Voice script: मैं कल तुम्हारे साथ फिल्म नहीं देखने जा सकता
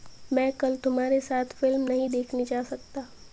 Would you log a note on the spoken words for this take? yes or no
no